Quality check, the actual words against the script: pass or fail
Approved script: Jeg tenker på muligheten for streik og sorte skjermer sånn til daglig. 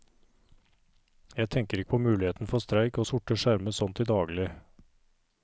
fail